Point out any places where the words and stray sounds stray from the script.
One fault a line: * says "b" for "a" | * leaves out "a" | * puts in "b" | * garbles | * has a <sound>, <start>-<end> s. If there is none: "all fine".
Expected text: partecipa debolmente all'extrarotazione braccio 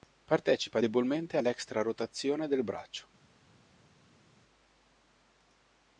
* puts in "del"